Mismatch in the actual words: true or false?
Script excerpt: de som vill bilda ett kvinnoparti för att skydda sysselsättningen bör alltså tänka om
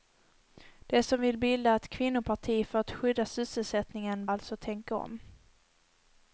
true